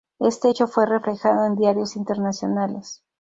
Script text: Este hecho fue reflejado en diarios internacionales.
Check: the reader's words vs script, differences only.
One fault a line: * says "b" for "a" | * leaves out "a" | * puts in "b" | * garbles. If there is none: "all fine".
all fine